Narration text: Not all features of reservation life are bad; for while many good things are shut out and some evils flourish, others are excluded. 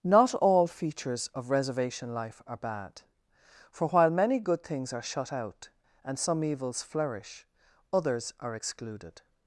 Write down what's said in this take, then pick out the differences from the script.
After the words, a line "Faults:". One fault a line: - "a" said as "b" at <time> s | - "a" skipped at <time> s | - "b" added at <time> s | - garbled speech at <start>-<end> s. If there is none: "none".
Not all features of reservation life are bad; for while many good things are shut out and some evils flourish, others are excluded.
Faults:
none